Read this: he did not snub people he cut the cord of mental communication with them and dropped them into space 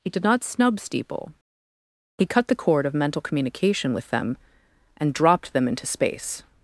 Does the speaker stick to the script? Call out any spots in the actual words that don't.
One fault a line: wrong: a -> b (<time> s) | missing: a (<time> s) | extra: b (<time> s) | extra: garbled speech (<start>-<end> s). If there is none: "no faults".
wrong: people -> steeple (0.8 s)